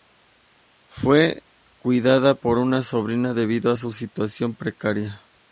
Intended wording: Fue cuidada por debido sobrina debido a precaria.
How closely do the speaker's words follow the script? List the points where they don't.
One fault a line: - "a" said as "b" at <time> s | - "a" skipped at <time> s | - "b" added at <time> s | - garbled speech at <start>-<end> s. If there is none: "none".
- "debido" said as "una" at 2.6 s
- "su situación" added at 3.8 s